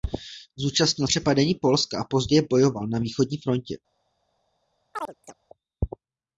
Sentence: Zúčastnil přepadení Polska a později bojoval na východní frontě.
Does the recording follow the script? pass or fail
pass